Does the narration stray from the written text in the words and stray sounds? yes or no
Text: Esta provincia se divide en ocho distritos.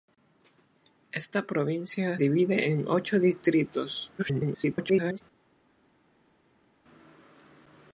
yes